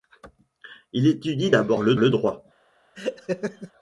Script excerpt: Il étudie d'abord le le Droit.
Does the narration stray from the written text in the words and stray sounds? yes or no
yes